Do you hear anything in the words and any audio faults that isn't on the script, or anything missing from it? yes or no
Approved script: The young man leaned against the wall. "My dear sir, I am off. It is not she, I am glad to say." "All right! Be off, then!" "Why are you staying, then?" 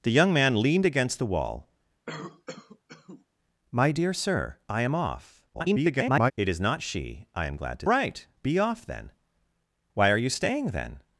yes